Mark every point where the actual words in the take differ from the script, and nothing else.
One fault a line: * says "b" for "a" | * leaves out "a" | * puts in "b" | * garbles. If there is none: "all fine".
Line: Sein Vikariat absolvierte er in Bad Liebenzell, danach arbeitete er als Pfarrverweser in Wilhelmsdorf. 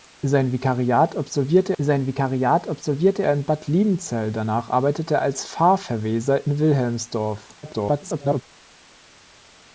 * puts in "sein Vikariat absolvierte"
* garbles